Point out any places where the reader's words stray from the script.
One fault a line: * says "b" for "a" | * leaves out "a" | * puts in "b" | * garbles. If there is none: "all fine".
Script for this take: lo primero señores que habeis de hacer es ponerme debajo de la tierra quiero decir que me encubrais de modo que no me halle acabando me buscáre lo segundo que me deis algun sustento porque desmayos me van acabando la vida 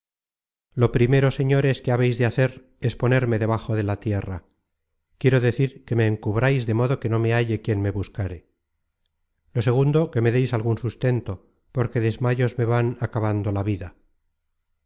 * says "quien" for "acabando"